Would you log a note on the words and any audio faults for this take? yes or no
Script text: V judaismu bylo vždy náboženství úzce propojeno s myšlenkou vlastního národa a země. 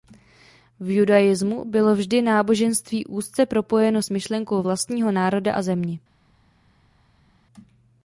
no